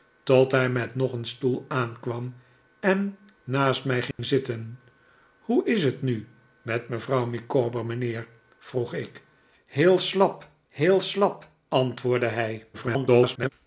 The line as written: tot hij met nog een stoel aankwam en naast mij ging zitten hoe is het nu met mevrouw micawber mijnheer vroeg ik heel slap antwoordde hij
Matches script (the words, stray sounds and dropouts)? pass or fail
fail